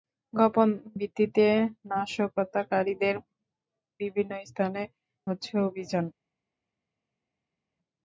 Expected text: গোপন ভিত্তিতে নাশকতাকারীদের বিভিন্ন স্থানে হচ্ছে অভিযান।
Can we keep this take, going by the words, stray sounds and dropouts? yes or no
yes